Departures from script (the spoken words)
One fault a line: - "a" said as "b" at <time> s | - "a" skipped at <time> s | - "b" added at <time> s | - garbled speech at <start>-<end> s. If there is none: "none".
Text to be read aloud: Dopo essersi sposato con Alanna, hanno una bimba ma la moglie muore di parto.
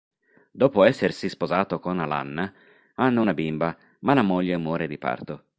none